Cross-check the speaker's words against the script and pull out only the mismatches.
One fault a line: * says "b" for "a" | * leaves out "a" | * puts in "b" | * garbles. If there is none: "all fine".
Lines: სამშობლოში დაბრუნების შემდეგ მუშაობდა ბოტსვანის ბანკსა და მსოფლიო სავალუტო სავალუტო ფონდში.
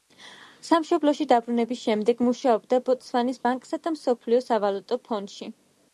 * leaves out "სავალუტო"